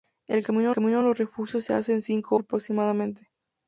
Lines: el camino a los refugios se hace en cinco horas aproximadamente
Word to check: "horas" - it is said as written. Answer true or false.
false